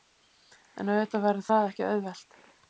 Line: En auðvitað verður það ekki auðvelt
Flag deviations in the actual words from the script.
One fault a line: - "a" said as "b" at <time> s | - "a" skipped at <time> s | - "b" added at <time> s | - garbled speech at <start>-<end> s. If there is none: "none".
none